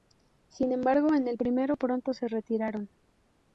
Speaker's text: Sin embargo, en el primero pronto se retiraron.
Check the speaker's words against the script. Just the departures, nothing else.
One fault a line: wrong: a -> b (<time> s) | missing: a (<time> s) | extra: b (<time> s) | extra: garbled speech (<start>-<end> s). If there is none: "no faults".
no faults